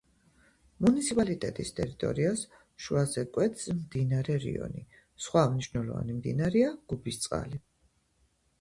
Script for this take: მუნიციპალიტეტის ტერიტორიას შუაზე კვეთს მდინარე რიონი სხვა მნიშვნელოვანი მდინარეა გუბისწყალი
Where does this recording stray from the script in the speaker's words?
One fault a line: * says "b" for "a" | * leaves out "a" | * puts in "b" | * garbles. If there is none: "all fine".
all fine